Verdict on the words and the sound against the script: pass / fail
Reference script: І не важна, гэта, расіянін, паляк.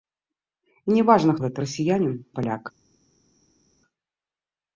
pass